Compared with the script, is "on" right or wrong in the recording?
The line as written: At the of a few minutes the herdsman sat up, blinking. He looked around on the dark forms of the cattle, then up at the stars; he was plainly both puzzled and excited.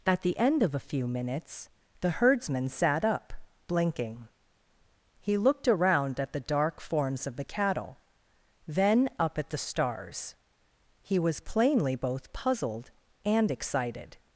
wrong